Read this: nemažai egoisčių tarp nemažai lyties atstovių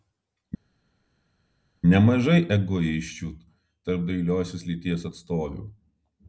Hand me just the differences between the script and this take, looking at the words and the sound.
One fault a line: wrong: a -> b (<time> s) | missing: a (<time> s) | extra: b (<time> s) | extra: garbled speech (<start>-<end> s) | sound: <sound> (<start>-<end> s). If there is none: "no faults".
wrong: nemažai -> dailiosios (4.1 s)